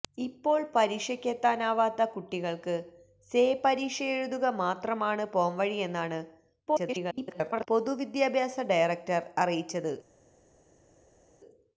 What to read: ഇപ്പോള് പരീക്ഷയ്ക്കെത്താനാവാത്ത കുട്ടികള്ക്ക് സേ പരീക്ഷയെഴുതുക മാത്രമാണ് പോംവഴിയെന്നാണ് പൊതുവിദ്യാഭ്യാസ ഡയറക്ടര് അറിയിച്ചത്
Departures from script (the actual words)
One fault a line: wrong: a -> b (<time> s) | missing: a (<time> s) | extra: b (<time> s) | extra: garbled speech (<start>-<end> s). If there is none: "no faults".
extra: garbled speech (6.7-7.7 s)